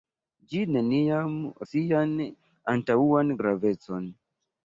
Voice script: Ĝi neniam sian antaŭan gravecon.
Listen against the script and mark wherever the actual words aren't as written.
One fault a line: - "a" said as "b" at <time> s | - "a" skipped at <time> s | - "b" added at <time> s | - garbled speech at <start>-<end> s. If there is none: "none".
none